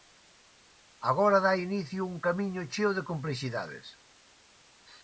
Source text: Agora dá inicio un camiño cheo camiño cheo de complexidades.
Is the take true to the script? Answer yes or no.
no